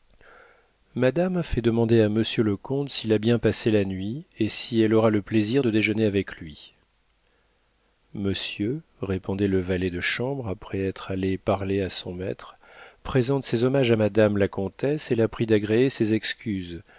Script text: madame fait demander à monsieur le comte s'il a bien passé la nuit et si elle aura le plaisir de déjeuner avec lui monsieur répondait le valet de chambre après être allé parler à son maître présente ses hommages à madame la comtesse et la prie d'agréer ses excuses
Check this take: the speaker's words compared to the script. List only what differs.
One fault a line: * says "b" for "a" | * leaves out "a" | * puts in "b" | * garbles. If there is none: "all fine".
all fine